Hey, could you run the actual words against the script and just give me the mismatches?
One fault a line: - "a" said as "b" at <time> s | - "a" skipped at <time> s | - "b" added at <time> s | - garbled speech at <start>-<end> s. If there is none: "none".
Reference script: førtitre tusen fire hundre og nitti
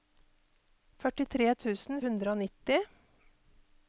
- "fire" skipped at 2.0 s